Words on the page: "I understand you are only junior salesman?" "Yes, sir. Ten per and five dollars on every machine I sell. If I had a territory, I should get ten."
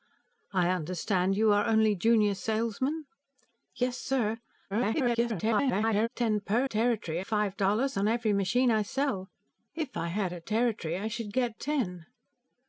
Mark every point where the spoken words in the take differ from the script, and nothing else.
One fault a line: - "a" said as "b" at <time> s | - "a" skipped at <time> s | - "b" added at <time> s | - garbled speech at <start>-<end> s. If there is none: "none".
- garbled speech at 4.7-6.1 s
- "and" said as "territory" at 6.7 s